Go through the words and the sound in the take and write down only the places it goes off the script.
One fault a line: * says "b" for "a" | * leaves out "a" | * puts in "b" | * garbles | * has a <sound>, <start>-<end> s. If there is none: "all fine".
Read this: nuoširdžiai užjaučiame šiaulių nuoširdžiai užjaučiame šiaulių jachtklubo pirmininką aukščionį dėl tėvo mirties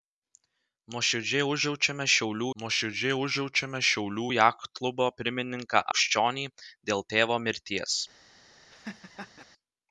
* has a laugh, 8.7-9.4 s